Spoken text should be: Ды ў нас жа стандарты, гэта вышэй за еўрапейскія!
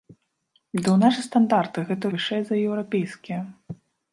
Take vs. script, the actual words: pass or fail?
pass